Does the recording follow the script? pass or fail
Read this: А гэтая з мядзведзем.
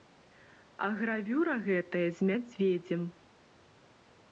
fail